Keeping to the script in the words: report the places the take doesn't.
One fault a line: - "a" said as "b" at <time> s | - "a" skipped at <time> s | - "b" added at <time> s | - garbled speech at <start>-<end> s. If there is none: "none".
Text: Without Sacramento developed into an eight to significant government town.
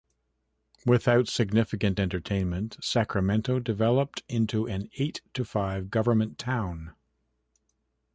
- "significant entertainment" added at 1.3 s
- "significant" said as "five" at 5.4 s